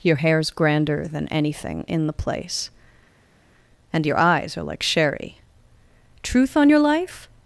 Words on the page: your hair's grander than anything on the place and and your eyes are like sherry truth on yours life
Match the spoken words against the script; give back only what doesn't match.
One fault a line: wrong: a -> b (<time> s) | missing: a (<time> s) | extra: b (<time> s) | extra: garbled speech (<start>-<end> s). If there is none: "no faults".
wrong: on -> in (1.9 s)
missing: and (4.1 s)
wrong: yours -> your (6.7 s)